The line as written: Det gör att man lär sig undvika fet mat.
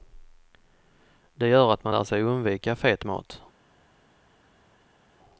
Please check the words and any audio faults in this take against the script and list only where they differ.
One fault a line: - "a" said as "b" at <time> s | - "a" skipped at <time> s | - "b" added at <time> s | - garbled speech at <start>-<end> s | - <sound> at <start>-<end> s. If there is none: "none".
none